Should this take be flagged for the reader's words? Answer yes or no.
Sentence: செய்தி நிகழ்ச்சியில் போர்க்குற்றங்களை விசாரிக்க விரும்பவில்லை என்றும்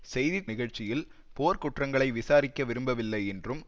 no